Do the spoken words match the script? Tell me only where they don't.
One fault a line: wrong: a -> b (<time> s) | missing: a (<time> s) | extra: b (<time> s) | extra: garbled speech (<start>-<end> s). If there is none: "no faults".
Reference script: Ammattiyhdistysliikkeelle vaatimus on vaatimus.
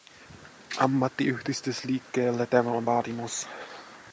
wrong: vaatimus -> tämä (2.5 s)